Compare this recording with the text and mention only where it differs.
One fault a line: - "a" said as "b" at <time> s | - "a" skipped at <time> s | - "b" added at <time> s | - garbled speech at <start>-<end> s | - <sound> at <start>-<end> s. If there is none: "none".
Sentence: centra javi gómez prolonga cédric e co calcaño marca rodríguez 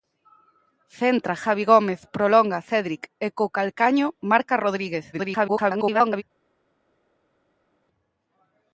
- garbled speech at 5.1-6.2 s